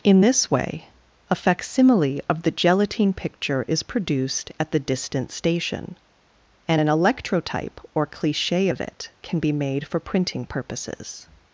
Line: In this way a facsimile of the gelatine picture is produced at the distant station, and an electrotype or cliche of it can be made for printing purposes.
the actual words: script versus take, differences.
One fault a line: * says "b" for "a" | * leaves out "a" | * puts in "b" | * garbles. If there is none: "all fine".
all fine